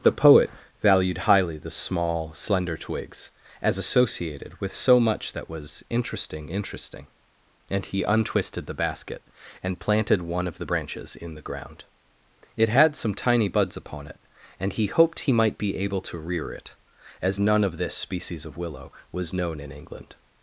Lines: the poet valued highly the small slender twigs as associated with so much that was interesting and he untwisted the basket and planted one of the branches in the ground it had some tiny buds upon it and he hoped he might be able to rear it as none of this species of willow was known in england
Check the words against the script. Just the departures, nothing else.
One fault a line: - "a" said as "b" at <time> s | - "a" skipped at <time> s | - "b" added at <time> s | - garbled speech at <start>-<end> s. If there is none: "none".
- "interesting" added at 6.5 s